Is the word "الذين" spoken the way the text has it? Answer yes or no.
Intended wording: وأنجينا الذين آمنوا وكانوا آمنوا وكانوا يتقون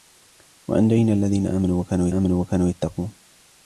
yes